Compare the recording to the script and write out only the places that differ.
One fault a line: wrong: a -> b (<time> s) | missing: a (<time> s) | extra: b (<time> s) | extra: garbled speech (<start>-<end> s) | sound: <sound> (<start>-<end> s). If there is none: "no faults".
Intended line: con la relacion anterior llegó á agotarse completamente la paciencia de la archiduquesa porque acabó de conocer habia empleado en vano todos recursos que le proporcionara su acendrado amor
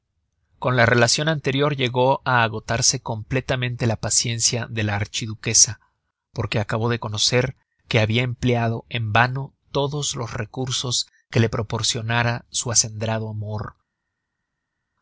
extra: que (7.9 s)
extra: los (10.2 s)